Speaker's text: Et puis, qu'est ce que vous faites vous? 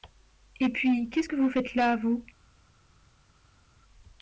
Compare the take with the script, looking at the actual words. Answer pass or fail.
fail